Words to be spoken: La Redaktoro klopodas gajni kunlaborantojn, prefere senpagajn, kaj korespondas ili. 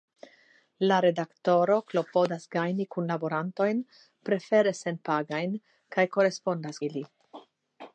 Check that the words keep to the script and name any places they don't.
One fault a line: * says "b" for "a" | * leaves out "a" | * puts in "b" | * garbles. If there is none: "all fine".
all fine